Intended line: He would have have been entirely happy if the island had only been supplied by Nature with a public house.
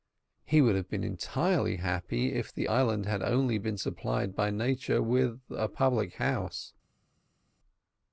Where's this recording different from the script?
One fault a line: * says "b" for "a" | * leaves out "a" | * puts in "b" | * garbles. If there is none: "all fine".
* leaves out "have"